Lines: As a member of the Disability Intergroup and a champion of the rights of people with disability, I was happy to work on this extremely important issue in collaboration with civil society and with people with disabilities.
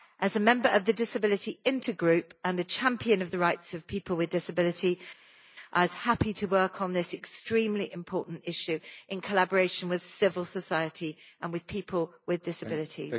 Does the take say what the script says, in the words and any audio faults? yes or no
yes